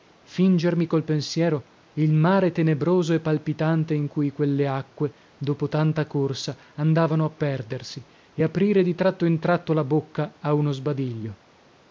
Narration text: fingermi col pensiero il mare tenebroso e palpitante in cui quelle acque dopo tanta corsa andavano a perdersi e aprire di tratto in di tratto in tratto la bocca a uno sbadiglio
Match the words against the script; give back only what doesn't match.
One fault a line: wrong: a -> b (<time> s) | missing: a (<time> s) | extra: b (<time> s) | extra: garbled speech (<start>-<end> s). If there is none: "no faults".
missing: di tratto in (9.4 s)